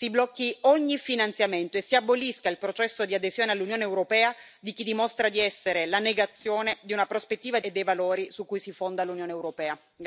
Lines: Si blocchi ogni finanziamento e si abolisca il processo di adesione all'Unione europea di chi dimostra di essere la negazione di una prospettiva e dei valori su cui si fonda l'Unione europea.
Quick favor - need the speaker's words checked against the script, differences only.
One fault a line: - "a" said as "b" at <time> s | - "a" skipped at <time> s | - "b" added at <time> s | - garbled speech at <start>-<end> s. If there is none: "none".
none